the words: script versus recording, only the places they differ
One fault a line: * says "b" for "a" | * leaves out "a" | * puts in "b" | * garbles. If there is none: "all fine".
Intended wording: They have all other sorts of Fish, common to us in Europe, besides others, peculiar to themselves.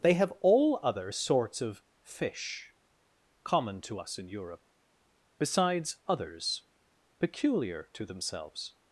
all fine